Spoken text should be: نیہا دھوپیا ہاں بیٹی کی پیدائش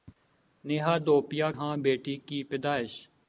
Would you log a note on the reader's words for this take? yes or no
no